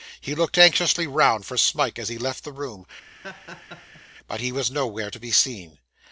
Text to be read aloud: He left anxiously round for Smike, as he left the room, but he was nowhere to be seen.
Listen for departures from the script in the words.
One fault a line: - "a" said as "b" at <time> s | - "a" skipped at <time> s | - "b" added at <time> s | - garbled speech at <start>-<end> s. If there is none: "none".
- "left" said as "looked" at 0.3 s